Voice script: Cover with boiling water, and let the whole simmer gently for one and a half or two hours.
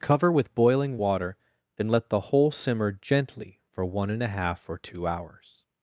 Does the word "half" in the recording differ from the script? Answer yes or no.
no